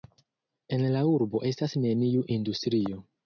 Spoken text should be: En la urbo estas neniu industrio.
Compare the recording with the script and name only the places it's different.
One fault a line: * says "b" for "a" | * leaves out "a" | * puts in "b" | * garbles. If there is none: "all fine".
all fine